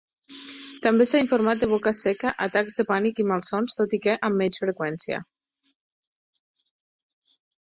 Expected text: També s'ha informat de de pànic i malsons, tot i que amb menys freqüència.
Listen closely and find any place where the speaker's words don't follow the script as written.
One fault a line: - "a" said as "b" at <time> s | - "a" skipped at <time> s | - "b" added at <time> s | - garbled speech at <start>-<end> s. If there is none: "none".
- "boca seca atacs" added at 1.7 s